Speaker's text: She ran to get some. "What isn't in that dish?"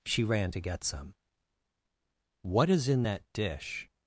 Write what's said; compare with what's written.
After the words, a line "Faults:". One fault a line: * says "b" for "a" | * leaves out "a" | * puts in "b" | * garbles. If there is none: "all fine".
She ran to get some. "What is in that dish?"
Faults:
* says "is" for "isn't"